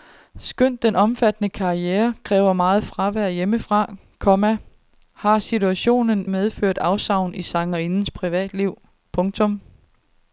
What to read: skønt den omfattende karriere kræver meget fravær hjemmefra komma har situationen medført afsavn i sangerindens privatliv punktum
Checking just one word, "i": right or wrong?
right